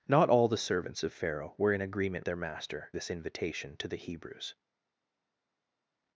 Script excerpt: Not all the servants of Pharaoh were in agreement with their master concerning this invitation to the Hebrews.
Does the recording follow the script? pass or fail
fail